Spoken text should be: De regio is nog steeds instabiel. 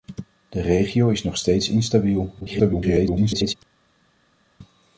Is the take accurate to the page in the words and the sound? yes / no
no